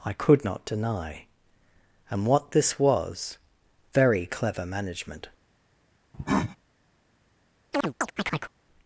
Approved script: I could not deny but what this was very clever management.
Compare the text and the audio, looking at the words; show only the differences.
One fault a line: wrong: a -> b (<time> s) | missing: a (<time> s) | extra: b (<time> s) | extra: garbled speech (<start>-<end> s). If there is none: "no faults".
wrong: but -> and (2.1 s)